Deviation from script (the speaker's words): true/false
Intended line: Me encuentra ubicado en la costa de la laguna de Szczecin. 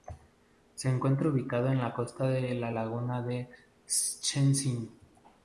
true